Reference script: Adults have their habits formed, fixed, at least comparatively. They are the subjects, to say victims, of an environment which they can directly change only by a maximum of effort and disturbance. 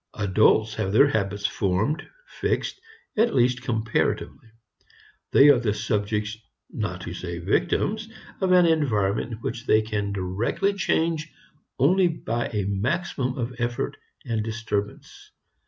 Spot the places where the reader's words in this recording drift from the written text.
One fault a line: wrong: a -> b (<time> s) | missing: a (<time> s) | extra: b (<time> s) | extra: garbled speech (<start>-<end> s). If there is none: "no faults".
extra: not (6.7 s)